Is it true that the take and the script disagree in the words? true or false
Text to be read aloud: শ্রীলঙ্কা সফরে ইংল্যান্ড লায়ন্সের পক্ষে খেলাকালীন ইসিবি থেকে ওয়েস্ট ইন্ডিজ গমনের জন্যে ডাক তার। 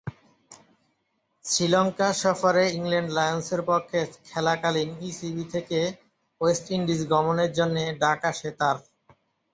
true